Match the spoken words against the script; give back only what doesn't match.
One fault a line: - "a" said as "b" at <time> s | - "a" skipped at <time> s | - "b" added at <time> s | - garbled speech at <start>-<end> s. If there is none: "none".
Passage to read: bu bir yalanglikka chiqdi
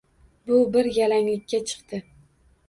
none